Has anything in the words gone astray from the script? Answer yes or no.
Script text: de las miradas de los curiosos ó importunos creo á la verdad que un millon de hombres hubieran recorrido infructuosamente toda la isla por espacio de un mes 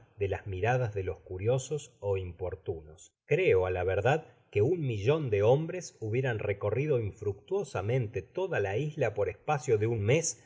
no